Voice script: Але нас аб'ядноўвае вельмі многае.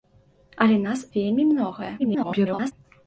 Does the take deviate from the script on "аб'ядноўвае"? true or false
true